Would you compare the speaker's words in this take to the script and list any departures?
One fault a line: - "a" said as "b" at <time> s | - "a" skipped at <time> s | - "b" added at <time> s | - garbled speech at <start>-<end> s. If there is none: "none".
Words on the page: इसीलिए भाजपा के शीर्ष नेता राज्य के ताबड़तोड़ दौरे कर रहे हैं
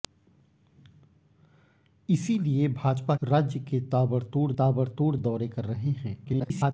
- "के शीर्ष नेता" skipped at 3.1 s
- "ताबड़तोड़" added at 4.6 s
- garbled speech at 6.2-6.7 s